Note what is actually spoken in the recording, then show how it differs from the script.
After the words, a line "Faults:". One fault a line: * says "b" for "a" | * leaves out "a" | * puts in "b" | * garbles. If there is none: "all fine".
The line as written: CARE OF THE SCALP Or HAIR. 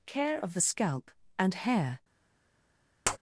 CARE OF THE SCALP AND HAIR.
Faults:
* says "AND" for "Or"